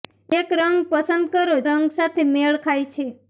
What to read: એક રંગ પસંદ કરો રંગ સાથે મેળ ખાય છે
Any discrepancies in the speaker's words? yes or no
no